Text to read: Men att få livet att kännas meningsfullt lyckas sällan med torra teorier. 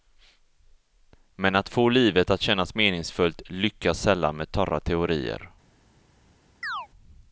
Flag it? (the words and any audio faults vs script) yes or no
yes